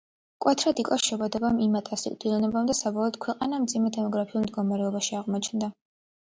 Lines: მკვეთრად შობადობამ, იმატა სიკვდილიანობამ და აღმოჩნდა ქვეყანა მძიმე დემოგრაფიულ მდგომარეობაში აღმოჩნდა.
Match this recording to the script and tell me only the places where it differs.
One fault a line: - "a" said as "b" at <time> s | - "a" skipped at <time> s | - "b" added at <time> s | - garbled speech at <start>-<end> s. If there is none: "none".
- "იკლო" added at 0.8 s
- "აღმოჩნდა" said as "საბოლოოდ" at 2.8 s